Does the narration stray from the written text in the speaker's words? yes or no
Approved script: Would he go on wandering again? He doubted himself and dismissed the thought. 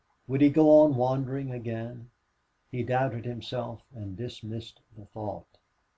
no